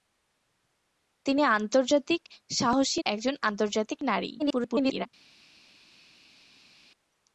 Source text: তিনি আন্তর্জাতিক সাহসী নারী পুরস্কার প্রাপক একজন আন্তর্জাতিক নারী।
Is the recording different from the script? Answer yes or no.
yes